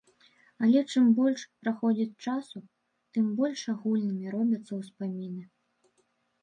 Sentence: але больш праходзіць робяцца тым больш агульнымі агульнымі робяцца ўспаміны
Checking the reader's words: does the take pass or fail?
fail